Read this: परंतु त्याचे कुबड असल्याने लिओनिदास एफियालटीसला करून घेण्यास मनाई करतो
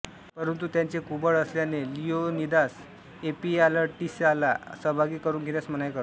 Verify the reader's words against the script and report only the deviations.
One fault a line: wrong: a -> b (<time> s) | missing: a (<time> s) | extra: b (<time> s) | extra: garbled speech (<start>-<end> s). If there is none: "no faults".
extra: सहभागी (4.8 s)